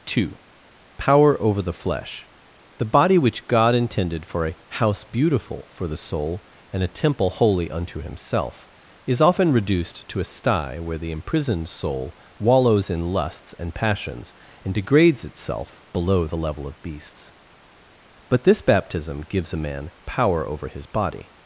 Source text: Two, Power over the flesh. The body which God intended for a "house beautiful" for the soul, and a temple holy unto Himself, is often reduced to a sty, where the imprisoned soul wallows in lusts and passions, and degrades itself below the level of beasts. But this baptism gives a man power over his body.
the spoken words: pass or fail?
pass